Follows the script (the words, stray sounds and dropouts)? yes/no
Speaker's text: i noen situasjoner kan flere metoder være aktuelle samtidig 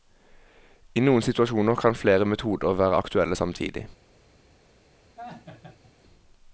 no